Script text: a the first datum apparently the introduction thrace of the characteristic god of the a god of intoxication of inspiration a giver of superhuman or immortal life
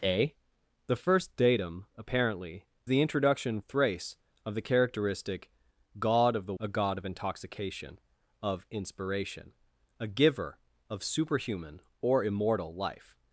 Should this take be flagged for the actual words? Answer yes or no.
no